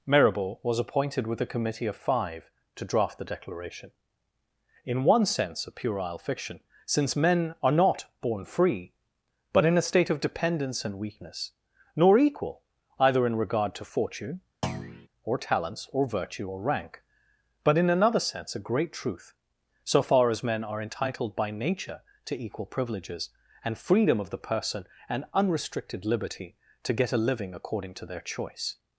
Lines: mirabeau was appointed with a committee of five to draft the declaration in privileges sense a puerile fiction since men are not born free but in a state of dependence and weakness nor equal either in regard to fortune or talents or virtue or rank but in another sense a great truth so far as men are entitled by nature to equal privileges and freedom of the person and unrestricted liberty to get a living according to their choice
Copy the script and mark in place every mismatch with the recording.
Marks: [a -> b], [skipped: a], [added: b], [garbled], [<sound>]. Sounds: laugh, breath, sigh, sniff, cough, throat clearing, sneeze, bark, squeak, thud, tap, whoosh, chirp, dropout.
mirabeau was appointed with a committee of five to draft the declaration in [privileges -> one] sense a puerile fiction since men are not born free but in a state of dependence and weakness nor equal either in regard to fortune [thud] or talents or virtue or rank but in another sense a great truth so far as men are entitled by nature to equal privileges and freedom of the person and unrestricted liberty to get a living according to their choice